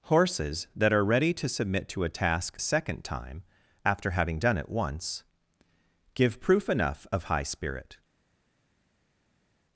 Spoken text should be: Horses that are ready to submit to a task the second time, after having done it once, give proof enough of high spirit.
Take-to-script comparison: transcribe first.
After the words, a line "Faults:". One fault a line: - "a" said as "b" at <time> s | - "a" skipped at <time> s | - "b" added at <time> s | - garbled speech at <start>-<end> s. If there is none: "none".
Horses that are ready to submit to a task second time, after having done it once, give proof enough of high spirit.
Faults:
- "the" skipped at 2.6 s